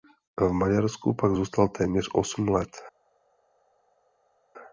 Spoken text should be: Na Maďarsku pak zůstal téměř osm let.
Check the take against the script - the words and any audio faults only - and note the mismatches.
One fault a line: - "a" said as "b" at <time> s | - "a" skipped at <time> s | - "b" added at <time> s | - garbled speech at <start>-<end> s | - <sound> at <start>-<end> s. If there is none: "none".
- "Na" said as "V" at 0.4 s